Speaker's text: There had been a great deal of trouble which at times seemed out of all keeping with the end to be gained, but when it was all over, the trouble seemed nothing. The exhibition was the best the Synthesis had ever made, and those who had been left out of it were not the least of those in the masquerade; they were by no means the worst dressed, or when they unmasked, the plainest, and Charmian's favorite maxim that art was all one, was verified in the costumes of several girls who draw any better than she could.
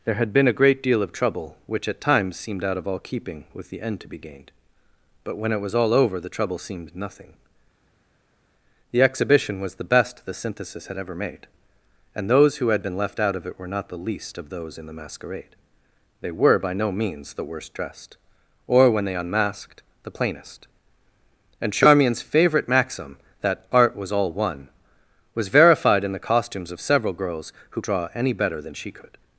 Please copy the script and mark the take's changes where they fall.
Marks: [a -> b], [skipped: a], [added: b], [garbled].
There had been a great deal of trouble which at times seemed out of all keeping with the end to be gained, but when it was all over, the trouble seemed nothing. The exhibition was the best the Synthesis had ever made, and those who had been left out of it were not the least of those in the masquerade; they were by no means the worst dressed, or when they unmasked, the plainest, and Charmian's favorite maxim that art was all one, was verified in the costumes of several girls who draw any better than she could.